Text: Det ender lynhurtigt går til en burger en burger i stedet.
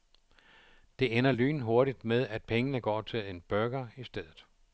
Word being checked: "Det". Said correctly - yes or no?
yes